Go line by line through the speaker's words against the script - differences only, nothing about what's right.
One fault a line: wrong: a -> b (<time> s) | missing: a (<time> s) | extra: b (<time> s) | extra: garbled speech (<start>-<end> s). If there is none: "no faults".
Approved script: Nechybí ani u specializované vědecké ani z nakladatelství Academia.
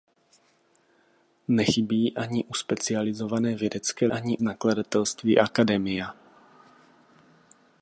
no faults